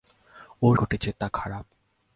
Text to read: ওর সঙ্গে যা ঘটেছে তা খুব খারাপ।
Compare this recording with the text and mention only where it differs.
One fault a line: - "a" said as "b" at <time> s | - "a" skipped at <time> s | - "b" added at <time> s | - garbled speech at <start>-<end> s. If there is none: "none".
- "সঙ্গে যা" skipped at 0.8 s
- "খুব" skipped at 1.3 s